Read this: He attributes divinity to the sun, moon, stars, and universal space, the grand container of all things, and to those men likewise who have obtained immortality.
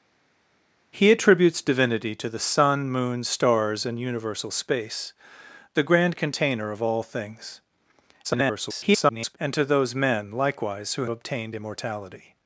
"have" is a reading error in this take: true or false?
true